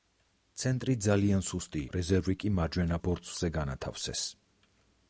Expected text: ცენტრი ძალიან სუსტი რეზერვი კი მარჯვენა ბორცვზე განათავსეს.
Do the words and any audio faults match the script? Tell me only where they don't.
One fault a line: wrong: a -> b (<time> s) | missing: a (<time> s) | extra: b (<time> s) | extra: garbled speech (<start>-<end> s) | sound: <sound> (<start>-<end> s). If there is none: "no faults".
no faults